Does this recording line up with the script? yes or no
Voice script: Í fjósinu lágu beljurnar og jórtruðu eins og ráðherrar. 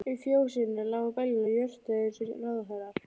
yes